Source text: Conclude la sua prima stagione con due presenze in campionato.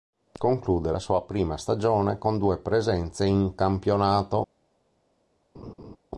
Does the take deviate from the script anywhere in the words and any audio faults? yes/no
yes